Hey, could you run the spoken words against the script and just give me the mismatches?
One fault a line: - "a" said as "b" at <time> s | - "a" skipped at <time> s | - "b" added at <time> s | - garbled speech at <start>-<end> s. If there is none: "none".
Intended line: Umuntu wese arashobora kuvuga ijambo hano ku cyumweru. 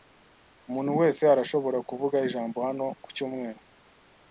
none